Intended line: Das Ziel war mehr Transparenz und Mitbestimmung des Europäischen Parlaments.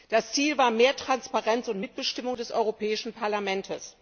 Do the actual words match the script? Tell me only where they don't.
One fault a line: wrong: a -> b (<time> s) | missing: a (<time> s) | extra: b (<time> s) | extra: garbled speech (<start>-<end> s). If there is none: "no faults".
no faults